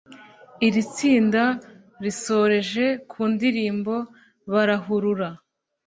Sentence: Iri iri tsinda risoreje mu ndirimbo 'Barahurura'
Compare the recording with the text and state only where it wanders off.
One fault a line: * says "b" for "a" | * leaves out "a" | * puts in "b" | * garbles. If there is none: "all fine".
* leaves out "iri"
* says "ku" for "mu"